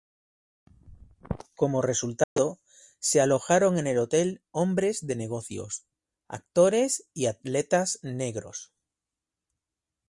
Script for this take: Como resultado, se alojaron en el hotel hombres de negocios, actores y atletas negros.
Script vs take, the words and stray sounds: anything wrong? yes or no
yes